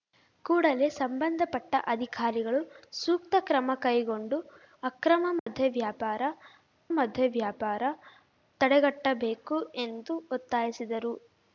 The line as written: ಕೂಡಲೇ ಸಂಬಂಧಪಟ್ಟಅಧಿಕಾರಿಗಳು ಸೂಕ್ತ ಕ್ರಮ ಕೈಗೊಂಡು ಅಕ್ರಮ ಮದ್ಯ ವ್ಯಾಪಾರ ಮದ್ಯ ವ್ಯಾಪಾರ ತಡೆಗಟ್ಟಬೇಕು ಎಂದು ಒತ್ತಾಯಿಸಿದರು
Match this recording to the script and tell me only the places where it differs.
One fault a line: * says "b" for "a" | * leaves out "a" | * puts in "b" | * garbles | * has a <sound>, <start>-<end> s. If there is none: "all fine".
* has a dropout, 5.4-5.5 s